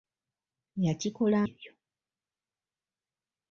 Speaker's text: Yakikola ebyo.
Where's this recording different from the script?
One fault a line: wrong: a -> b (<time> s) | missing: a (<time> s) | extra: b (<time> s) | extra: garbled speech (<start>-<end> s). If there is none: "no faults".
no faults